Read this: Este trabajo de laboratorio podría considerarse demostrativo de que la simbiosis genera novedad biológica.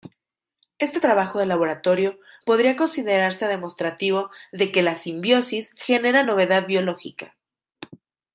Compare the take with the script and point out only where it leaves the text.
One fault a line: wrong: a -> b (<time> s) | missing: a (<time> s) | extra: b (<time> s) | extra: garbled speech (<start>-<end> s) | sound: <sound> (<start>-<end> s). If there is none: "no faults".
no faults